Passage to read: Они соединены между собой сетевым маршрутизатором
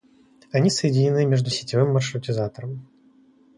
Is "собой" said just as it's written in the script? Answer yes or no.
no